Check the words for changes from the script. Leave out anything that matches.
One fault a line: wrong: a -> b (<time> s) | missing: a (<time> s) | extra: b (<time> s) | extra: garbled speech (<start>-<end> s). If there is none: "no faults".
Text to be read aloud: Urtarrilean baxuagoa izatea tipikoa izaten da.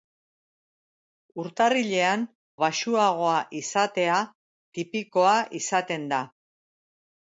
no faults